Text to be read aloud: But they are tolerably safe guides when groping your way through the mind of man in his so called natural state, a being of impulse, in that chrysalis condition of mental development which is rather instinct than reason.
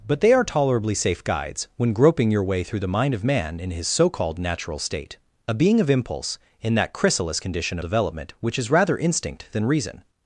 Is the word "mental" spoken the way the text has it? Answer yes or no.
no